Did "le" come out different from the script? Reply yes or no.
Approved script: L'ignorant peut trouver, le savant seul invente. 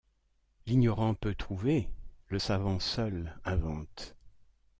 no